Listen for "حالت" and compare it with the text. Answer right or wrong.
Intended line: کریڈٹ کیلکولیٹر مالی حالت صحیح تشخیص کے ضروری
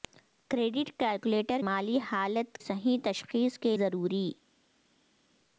right